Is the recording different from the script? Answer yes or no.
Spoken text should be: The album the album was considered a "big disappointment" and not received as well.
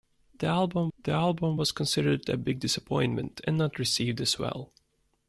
no